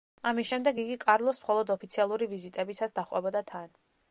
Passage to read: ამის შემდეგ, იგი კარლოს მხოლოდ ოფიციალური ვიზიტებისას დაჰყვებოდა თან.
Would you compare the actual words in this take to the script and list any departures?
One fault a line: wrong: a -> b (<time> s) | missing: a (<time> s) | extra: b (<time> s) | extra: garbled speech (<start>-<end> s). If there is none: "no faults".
no faults